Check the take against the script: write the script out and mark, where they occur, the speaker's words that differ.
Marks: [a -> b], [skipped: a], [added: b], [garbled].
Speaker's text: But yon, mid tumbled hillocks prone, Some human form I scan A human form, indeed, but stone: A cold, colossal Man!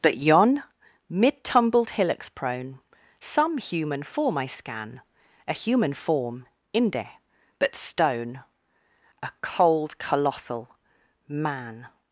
But yon, mid tumbled hillocks prone, Some human form I scan A human form, [indeed, -> inde] but stone: A cold, colossal Man!